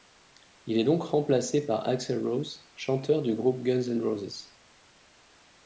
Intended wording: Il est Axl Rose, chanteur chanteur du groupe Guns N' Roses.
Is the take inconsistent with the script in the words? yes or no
yes